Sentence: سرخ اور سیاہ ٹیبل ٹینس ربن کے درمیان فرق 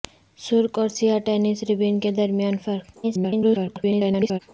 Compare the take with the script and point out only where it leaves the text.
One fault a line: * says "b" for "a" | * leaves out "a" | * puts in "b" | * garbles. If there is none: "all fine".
* leaves out "ٹیبل"
* garbles